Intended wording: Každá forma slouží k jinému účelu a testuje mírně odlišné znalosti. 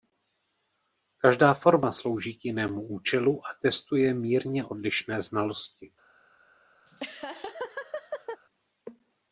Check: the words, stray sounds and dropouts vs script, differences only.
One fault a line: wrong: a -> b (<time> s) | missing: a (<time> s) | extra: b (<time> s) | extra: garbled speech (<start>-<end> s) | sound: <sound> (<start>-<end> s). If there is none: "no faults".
sound: laugh (6.9-8.4 s)